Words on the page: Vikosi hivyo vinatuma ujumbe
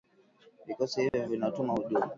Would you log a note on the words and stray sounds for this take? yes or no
yes